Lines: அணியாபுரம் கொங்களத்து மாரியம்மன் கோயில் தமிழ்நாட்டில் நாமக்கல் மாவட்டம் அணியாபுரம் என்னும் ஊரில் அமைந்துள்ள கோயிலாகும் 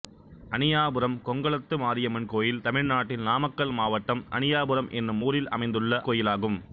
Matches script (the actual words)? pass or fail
pass